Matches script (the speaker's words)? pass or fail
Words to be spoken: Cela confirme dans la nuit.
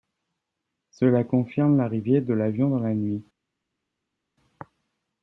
fail